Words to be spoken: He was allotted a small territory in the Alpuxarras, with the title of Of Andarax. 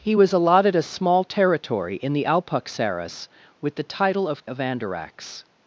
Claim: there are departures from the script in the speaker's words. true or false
false